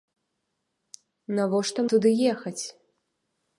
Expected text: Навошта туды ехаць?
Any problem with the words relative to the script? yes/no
no